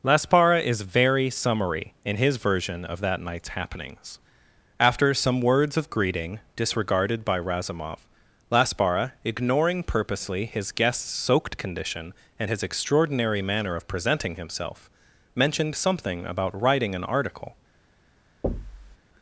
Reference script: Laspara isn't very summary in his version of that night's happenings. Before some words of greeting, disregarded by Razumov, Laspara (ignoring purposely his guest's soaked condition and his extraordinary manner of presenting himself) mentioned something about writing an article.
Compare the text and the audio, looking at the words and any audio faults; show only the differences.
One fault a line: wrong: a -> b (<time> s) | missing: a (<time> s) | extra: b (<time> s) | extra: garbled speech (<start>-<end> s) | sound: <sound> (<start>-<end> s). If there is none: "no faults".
wrong: isn't -> is (0.6 s)
wrong: Before -> After (4.8 s)
sound: thud (18.4-19.0 s)